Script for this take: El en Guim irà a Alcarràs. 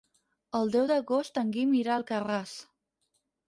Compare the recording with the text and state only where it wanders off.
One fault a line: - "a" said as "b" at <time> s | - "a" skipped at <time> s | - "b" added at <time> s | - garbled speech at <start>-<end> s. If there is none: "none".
- "deu d'agost" added at 0.8 s